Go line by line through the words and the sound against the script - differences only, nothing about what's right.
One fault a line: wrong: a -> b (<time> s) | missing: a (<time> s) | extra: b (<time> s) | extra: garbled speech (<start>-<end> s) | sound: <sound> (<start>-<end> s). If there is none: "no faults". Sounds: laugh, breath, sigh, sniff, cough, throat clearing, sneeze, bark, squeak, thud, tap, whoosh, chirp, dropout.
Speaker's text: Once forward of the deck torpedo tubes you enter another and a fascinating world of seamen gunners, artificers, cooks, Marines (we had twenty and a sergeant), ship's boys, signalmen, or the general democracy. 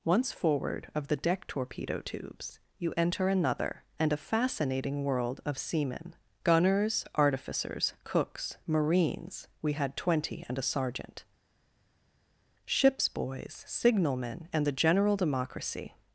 wrong: or -> and (14.5 s)